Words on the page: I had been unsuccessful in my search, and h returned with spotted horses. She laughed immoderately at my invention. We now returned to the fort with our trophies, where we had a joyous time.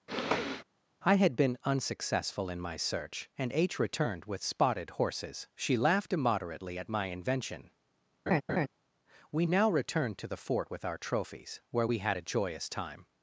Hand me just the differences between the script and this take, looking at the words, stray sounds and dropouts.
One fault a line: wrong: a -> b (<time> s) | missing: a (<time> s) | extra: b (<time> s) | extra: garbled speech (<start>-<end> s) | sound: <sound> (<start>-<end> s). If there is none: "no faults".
sound: sniff (0.1-0.6 s)
sound: laugh (8.3-8.7 s)